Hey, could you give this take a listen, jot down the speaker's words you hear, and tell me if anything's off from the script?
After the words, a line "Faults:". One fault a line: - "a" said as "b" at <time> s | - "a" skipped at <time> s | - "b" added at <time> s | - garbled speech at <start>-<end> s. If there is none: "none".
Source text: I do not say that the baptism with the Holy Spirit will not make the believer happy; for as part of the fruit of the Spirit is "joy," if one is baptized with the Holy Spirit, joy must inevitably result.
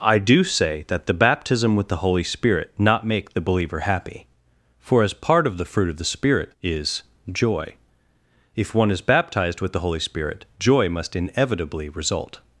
I do say that the baptism with the Holy Spirit not make the believer happy; for as part of the fruit of the Spirit is "joy," if one is baptized with the Holy Spirit, joy must inevitably result.
Faults:
- "not" skipped at 0.4 s
- "will" skipped at 2.7 s